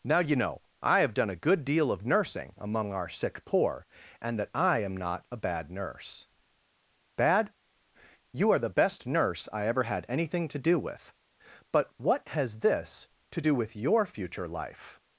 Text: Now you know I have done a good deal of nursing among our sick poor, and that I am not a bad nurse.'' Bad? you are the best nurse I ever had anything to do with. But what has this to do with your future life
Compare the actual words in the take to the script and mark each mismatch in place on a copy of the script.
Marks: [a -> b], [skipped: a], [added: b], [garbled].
Now you know I have done a good deal of nursing among our sick poor, and that I am not a bad nurse.'' Bad? you are the best nurse I ever had anything to do with. But what has this to do with your future life